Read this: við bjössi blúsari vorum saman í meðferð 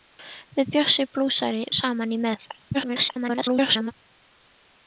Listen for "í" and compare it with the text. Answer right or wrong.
right